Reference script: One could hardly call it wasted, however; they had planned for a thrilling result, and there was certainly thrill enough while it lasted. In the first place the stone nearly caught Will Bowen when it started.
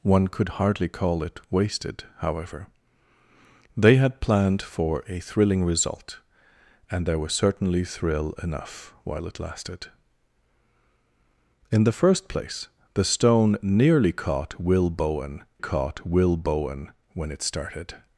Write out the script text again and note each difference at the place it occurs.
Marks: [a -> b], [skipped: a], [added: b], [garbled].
One could hardly call it wasted, however; they had planned for a thrilling result, and there was certainly thrill enough while it lasted. In the first place the stone nearly caught Will Bowen [added: caught Will Bowen] when it started.